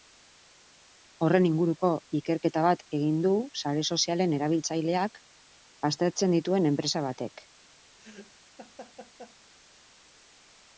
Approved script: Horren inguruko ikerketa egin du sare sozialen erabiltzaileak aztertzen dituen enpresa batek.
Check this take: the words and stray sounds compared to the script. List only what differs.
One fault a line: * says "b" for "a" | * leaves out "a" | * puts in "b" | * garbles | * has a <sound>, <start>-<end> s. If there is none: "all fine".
* puts in "bat"
* has a laugh, 8.0-9.4 s